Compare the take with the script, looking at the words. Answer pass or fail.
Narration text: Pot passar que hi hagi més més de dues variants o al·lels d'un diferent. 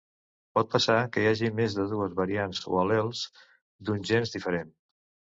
fail